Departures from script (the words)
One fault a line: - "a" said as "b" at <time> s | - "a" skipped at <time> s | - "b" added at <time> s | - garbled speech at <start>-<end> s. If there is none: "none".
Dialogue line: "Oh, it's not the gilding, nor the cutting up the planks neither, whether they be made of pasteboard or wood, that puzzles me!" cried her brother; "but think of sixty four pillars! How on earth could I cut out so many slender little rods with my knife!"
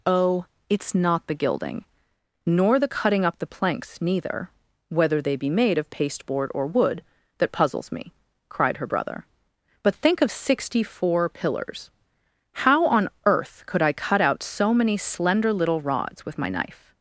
none